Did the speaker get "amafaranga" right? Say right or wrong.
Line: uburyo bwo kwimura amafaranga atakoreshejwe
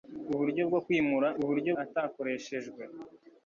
wrong